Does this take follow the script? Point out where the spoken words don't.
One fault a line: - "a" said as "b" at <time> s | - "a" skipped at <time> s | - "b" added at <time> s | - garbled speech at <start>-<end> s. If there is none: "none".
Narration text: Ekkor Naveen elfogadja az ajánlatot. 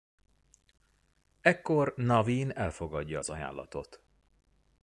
none